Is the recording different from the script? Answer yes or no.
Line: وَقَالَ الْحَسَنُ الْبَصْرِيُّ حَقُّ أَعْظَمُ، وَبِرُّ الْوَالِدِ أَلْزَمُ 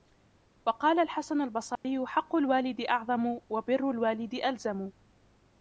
yes